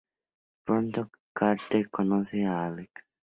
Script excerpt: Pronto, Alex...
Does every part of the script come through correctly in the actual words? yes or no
no